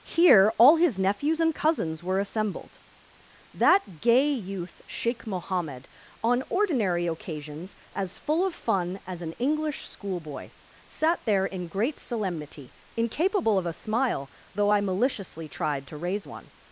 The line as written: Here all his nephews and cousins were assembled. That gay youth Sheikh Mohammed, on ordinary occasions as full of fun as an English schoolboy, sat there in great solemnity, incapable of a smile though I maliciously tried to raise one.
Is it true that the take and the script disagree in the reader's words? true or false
false